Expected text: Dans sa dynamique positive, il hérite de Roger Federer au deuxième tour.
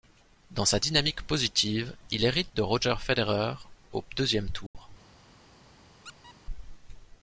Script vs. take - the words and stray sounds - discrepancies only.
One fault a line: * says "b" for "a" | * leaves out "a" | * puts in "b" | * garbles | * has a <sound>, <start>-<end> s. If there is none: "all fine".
* has a dropout, 4.7-4.7 s
* has a squeak, 6.0-6.4 s